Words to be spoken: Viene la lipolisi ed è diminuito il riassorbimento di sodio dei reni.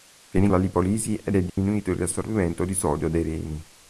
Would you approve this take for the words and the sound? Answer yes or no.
no